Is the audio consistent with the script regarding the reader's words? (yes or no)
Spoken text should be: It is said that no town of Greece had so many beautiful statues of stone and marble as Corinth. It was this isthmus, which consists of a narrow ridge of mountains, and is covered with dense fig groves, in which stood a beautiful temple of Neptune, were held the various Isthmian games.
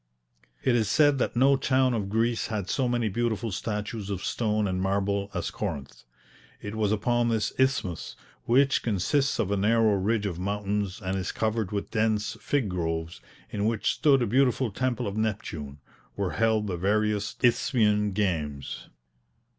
no